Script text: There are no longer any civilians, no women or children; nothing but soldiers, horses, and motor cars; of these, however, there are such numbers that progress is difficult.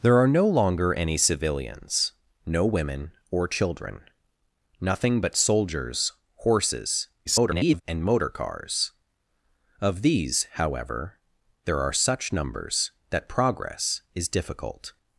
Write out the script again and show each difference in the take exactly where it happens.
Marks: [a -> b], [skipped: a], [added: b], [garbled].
There are no longer any civilians, no women or children; nothing but soldiers, horses, [garbled] and motor cars; of these, however, there are such numbers that progress is difficult.